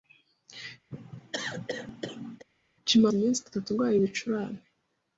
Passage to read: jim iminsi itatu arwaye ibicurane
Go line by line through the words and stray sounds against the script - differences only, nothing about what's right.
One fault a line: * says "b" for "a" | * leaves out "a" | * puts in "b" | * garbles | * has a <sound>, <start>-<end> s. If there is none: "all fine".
* has a cough, 0.9-2.5 s